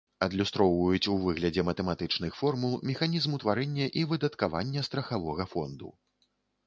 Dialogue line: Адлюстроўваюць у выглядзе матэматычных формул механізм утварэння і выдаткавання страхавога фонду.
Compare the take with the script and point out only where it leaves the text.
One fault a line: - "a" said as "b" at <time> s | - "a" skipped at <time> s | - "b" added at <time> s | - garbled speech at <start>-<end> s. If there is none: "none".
none